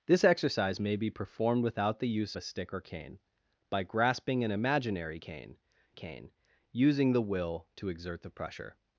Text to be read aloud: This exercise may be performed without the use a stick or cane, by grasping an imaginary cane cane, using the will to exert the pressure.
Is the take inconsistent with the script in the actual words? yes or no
no